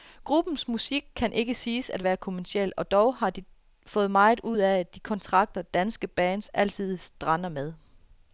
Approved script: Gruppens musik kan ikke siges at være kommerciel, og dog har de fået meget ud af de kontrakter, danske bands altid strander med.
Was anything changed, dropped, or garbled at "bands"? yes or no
no